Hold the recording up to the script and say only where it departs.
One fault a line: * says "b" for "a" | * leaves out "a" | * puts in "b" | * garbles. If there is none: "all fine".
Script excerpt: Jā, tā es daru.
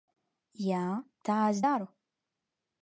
all fine